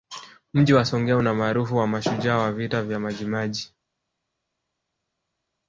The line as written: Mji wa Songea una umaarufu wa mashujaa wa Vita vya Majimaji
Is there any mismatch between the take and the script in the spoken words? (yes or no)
no